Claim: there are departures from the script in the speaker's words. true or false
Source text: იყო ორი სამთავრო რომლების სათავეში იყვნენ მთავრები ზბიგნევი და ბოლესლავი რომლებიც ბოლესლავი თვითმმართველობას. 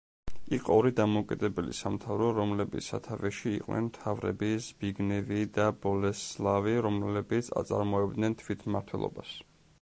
true